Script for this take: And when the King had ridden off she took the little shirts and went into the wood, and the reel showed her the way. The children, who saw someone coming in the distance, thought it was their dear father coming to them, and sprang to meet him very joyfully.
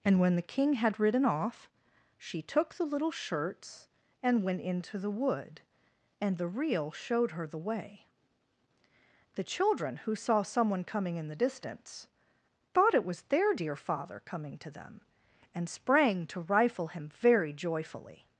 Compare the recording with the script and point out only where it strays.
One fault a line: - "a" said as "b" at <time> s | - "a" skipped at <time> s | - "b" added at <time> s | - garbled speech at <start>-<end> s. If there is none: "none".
- "meet" said as "rifle" at 16.4 s